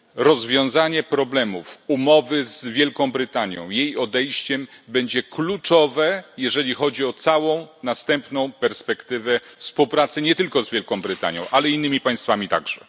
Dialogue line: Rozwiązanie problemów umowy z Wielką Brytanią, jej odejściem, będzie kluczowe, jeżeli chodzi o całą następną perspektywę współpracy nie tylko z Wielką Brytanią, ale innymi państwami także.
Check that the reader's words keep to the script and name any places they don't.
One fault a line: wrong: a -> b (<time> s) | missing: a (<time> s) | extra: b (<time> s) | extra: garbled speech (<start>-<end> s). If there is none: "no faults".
no faults